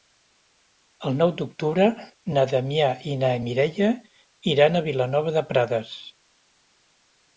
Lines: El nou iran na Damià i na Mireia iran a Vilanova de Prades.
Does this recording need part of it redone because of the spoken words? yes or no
yes